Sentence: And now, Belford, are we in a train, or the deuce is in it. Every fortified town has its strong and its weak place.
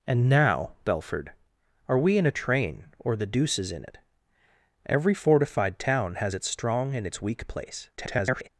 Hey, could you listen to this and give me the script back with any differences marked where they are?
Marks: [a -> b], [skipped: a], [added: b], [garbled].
And now, Belford, are we in a train, or the deuce is in it. Every fortified town has its strong and its weak place. [garbled]